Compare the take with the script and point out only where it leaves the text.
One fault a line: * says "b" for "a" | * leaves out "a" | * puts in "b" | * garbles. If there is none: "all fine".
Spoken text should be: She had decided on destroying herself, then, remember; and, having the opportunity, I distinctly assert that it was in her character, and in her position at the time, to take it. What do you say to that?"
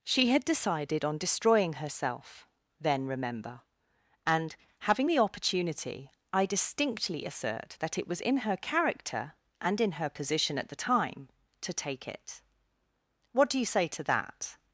all fine